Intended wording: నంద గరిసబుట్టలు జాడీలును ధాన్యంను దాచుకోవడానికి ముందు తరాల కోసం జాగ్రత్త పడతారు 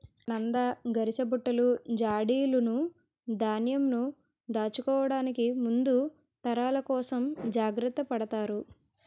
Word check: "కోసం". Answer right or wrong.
right